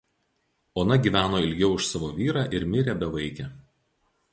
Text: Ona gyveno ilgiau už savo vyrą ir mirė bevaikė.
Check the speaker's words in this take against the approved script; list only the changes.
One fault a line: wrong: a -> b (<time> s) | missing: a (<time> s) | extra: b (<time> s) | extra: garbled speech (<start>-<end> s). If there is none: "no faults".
no faults